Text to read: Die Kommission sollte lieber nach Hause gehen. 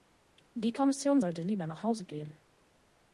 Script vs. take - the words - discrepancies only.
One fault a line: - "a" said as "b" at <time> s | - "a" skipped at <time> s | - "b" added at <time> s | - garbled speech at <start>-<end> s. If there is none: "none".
none